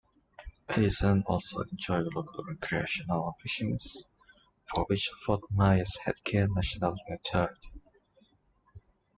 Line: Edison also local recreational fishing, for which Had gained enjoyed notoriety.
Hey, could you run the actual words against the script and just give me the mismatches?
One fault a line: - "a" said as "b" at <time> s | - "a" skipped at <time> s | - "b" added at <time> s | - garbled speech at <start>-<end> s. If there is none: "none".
- "enjoyed" added at 1.6 s
- "Fort Myers" added at 5.2 s
- "enjoyed" said as "national" at 6.5 s